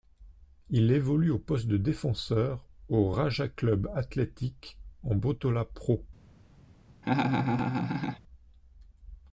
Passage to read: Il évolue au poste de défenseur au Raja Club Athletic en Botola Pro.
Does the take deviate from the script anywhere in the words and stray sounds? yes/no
yes